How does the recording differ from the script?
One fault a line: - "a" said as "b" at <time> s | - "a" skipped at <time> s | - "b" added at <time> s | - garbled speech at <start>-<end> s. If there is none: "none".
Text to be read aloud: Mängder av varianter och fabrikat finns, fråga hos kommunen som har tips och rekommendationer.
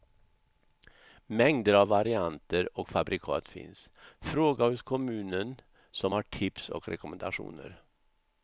none